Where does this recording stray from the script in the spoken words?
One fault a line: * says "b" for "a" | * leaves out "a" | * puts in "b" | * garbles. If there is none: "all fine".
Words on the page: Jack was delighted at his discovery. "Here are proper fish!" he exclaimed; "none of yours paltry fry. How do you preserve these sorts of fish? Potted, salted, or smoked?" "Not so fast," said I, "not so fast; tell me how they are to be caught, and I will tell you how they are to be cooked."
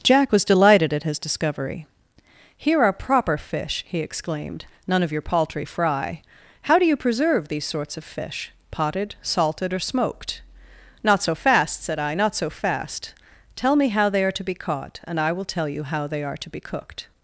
* says "your" for "yours"